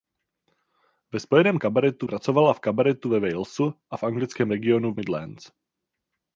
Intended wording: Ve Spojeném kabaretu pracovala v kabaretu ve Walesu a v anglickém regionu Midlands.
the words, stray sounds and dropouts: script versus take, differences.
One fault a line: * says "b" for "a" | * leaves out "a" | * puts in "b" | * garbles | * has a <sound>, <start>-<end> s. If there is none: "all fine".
all fine